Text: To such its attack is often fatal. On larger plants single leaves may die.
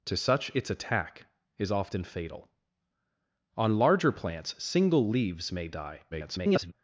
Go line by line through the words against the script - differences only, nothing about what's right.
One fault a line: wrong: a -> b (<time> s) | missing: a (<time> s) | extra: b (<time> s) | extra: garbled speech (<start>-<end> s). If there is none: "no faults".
extra: garbled speech (6.1-6.7 s)